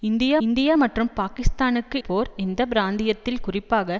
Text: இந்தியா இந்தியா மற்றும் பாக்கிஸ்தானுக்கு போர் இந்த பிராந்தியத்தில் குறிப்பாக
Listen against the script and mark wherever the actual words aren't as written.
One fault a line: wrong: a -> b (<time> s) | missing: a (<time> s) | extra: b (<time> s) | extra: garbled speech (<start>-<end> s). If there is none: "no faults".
no faults